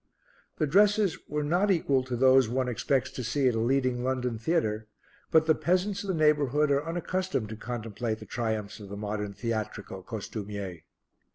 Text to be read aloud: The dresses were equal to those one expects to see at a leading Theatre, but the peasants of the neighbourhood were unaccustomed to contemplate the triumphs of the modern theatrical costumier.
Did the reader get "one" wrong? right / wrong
right